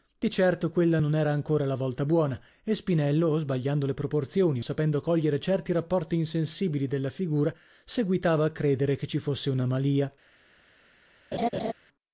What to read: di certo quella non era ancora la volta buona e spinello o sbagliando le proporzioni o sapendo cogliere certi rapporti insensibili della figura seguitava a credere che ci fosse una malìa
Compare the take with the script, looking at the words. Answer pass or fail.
pass